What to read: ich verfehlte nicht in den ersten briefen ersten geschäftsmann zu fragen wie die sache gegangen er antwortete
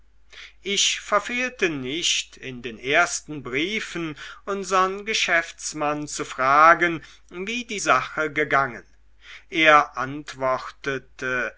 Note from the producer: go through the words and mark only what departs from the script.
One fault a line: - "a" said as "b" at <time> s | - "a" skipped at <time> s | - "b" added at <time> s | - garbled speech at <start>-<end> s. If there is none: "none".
- "ersten" said as "unsern" at 4.5 s